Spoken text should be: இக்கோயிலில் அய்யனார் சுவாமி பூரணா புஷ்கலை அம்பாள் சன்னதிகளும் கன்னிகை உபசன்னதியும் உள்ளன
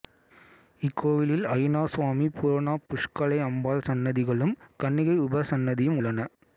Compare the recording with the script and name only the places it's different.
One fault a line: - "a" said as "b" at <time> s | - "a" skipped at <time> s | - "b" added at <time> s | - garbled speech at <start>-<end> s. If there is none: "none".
none